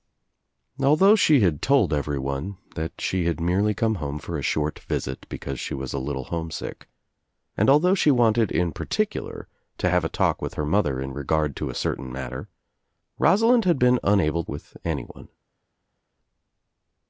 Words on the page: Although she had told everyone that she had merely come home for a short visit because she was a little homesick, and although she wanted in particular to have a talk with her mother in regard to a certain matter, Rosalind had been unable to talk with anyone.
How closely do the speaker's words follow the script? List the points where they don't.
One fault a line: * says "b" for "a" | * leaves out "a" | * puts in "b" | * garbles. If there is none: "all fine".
* leaves out "to talk"